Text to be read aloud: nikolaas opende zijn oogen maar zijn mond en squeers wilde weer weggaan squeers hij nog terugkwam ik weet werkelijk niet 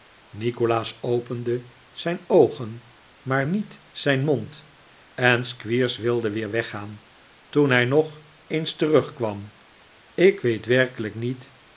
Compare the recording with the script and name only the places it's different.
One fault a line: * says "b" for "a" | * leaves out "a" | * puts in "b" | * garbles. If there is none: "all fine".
* puts in "niet"
* says "toen" for "squeers"
* puts in "eens"